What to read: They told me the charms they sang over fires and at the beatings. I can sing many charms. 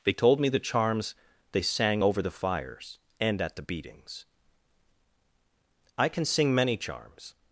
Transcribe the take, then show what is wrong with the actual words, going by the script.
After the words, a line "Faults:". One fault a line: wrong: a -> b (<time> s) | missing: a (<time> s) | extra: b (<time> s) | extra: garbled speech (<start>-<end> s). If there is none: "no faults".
They told me the charms they sang over the fires and at the beatings. I can sing many charms.
Faults:
extra: the (2.2 s)